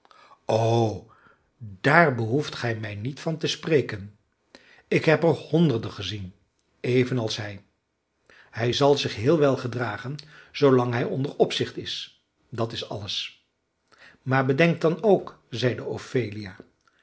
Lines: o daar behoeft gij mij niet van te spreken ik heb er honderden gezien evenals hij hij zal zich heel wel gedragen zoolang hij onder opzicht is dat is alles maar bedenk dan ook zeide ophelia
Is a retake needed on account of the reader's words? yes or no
no